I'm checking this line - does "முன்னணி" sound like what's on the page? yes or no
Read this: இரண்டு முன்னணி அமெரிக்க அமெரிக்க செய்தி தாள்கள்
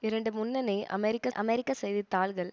yes